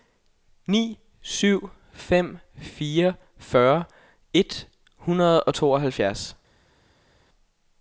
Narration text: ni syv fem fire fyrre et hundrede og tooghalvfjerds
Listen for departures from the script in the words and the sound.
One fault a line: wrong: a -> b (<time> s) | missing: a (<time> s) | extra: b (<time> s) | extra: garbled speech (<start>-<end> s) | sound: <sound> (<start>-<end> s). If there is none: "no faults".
no faults